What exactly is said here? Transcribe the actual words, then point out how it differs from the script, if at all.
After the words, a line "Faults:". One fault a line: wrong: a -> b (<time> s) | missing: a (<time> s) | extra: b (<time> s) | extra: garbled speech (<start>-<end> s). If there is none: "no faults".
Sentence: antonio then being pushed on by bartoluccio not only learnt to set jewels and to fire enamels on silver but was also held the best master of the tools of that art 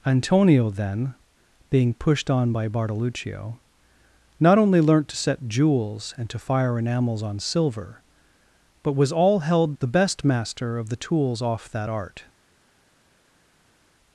antonio then being pushed on by bartoluccio not only learnt to set jewels and to fire enamels on silver but was all held the best master of the tools off that art
Faults:
wrong: also -> all (9.1 s)
wrong: of -> off (11.4 s)